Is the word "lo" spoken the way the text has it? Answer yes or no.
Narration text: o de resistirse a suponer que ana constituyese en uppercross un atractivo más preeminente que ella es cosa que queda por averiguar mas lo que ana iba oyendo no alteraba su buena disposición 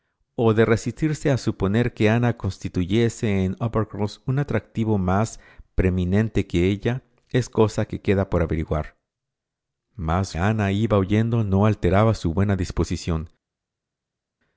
no